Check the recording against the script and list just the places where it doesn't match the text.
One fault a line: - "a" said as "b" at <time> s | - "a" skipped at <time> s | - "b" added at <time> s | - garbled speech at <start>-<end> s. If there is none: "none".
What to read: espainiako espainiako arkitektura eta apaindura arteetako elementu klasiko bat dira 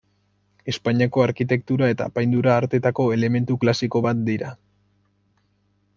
- "espainiako" skipped at 1.2 s